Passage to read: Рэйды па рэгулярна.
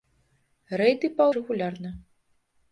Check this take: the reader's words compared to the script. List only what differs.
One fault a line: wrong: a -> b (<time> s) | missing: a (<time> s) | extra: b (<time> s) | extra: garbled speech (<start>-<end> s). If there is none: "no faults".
no faults